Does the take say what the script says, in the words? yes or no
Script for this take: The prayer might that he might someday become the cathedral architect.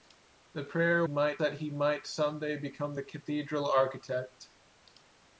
yes